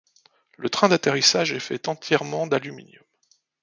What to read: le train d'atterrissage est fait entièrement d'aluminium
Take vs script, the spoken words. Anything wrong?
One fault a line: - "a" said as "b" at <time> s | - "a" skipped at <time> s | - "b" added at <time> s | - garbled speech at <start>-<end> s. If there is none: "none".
none